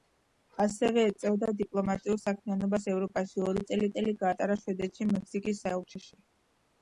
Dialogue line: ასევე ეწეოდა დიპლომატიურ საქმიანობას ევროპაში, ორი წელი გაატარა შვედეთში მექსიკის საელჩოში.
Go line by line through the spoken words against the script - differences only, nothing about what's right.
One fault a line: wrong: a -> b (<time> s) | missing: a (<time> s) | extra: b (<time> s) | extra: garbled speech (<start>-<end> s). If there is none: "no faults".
extra: წელი (4.0 s)